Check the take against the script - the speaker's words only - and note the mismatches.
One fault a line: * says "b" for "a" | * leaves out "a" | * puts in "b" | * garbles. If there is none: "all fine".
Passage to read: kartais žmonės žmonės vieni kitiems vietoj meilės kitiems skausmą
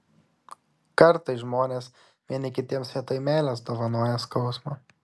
* leaves out "žmonės"
* says "dovanoja" for "kitiems"